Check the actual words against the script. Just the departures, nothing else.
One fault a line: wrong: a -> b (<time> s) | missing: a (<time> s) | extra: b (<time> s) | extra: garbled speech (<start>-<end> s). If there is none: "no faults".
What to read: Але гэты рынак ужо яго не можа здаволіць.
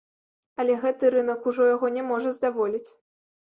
no faults